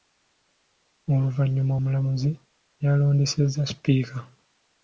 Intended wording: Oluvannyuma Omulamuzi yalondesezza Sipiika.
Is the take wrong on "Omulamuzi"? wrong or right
right